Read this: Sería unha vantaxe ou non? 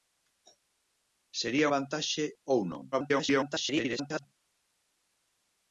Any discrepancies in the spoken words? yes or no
yes